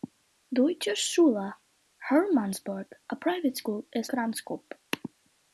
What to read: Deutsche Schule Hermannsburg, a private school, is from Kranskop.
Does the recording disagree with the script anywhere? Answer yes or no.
yes